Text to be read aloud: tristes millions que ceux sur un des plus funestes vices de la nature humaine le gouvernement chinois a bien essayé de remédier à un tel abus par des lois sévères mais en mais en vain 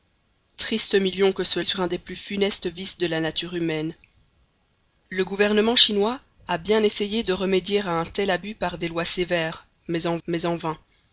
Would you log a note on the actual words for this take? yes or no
no